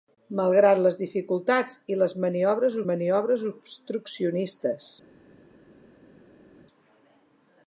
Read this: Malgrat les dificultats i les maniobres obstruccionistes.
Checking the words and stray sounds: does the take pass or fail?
fail